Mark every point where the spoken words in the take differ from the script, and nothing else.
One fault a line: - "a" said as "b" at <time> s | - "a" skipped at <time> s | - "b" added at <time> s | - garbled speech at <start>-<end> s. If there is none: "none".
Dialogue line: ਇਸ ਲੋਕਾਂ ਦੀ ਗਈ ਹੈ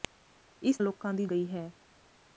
none